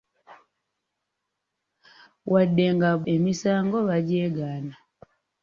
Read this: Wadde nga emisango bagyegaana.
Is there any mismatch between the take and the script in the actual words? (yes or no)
no